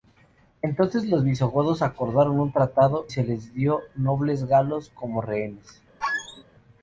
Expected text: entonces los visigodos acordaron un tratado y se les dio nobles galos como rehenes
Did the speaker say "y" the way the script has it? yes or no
no